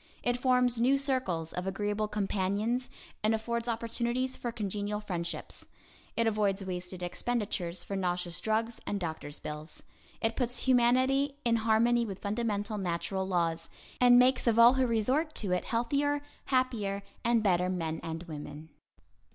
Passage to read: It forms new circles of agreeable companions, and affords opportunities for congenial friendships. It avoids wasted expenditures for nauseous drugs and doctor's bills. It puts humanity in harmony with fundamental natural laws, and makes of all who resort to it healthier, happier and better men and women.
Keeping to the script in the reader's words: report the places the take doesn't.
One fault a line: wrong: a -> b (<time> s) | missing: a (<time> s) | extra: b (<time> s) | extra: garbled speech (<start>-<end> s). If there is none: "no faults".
no faults